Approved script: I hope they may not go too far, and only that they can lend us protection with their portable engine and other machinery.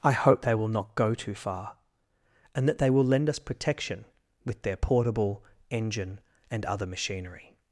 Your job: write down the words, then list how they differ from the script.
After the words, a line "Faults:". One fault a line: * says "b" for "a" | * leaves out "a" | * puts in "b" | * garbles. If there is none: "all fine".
I hope they will not go too far, and that they will lend us protection with their portable engine and other machinery.
Faults:
* says "will" for "may"
* leaves out "only"
* says "will" for "can"